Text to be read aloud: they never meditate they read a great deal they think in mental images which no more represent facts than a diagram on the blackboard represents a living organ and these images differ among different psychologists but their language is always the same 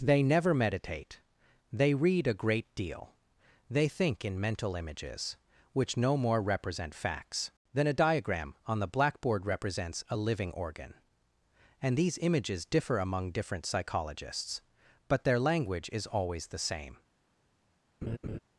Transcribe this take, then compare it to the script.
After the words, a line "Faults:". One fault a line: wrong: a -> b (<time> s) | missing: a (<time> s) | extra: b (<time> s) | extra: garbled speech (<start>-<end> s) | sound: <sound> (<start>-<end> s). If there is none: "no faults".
they never meditate they read a great deal they think in mental images which no more represent facts than a diagram on the blackboard represents a living organ and these images differ among different psychologists but their language is always the same
Faults:
sound: laugh (18.0-18.4 s)